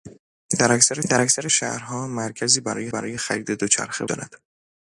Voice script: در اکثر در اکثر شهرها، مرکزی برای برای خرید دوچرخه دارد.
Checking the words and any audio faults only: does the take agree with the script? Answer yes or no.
yes